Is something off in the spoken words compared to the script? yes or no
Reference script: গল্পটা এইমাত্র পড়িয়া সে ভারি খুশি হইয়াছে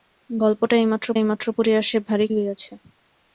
yes